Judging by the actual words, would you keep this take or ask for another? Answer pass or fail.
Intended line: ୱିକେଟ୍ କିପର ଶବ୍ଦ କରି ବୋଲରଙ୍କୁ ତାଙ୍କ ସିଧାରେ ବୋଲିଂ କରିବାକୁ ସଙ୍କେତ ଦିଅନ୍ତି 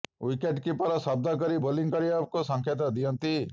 fail